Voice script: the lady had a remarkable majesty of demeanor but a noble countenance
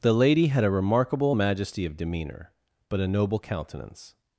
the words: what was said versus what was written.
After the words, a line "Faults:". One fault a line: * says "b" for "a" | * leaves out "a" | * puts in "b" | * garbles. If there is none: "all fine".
the lady had a remarkable majesty of demeanor but a noble countenance
Faults:
all fine